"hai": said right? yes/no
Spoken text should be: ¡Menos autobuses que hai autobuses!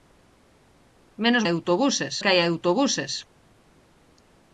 yes